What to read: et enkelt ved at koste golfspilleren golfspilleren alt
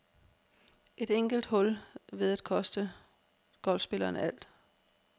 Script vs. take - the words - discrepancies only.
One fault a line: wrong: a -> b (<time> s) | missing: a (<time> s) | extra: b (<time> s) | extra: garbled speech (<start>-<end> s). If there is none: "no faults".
extra: hul (1.4 s)
missing: golfspilleren (4.2 s)